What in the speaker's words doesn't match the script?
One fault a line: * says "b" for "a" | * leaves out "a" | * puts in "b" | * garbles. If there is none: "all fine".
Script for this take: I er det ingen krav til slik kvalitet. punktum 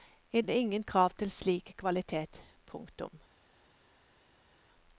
all fine